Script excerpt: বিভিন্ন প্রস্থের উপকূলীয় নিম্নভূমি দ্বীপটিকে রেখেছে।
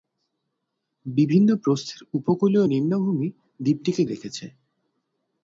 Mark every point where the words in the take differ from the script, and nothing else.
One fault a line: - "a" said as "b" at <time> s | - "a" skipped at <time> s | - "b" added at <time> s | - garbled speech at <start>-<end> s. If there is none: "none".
none